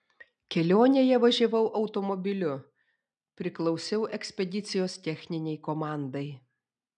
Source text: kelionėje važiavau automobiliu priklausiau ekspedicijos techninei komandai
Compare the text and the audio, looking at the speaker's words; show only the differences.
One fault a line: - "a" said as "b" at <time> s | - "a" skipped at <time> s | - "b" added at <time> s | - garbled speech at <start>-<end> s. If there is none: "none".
none